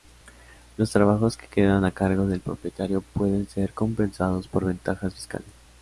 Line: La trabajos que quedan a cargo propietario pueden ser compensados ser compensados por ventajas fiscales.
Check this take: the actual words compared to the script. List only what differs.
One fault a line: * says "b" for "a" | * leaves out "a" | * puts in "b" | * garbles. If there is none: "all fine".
* says "Los" for "La"
* puts in "del"
* leaves out "ser compensados"